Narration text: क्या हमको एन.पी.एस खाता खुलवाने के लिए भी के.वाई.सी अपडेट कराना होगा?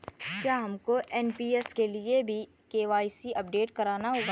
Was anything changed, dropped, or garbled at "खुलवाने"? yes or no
yes